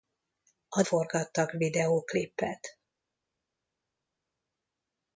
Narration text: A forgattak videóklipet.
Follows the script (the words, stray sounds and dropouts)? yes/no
yes